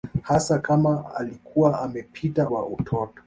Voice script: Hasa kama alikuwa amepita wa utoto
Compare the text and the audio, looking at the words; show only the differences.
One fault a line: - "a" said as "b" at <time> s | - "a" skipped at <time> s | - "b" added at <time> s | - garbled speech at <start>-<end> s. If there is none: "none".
none